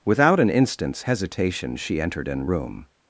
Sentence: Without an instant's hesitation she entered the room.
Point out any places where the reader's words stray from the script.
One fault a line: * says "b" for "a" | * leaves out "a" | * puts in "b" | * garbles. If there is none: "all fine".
* says "an" for "the"